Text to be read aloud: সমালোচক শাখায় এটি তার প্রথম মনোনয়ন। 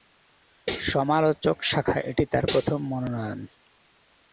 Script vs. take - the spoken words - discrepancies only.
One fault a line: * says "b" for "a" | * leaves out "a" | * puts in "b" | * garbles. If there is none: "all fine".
all fine